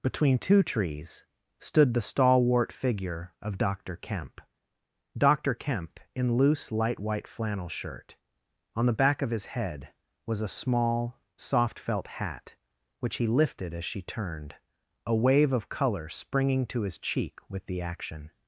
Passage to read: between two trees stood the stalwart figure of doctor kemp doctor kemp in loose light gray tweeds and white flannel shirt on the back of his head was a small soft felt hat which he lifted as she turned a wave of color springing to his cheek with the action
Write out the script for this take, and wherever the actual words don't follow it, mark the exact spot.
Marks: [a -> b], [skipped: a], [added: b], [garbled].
between two trees stood the stalwart figure of doctor kemp doctor kemp in loose light [skipped: gray tweeds and] white flannel shirt on the back of his head was a small soft felt hat which he lifted as she turned a wave of color springing to his cheek with the action